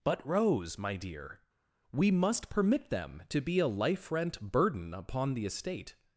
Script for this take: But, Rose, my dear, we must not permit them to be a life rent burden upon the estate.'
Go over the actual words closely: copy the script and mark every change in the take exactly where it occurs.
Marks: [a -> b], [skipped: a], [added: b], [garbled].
But, Rose, my dear, we must [skipped: not] permit them to be a life rent burden upon the estate.'